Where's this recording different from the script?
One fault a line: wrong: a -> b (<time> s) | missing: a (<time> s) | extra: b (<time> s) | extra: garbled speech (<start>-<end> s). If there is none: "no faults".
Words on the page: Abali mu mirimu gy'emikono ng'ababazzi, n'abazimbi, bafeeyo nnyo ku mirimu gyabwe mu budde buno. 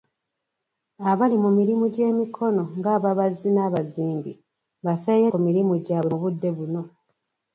missing: nnyo (5.3 s)